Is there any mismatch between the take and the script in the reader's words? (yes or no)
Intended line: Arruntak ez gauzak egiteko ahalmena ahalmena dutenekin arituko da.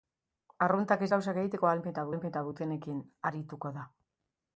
no